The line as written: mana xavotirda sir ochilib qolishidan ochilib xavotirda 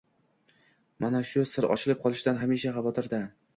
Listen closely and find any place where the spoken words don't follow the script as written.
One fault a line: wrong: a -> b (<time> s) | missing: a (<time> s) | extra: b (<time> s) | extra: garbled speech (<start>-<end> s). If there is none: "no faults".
wrong: xavotirda -> shu (1.3 s)
wrong: ochilib -> hamisha (2.4 s)